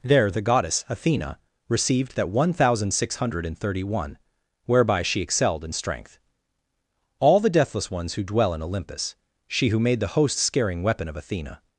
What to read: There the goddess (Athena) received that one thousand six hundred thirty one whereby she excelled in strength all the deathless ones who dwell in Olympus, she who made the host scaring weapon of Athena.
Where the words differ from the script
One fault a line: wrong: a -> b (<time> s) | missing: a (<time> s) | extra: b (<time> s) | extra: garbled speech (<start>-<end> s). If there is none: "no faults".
no faults